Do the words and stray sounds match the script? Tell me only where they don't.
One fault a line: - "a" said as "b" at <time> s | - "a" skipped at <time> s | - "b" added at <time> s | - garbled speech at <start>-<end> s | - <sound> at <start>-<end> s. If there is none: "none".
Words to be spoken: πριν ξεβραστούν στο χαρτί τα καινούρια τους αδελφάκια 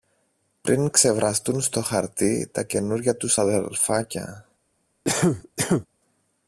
- cough at 5.0-5.9 s